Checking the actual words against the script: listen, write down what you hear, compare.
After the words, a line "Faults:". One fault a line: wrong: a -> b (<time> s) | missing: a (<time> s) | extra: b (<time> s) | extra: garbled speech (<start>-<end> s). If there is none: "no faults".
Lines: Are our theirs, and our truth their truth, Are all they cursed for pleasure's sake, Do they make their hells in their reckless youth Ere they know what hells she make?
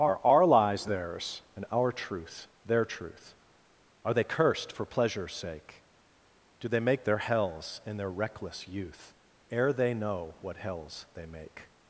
Are our lies theirs, and our truth their truth, Are they cursed for pleasure's sake, Do they make their hells in their reckless youth Ere they know what hells they make?
Faults:
extra: lies (0.5 s)
missing: all (4.1 s)
wrong: she -> they (11.1 s)